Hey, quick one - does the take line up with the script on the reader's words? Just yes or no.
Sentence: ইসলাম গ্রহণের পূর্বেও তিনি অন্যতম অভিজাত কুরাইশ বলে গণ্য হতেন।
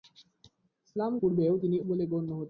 no